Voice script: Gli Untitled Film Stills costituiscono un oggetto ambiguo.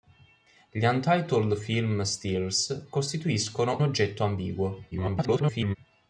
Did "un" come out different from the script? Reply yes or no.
yes